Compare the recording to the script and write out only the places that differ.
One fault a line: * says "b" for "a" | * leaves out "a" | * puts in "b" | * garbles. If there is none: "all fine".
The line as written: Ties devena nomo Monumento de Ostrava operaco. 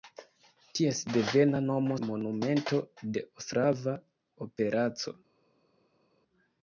all fine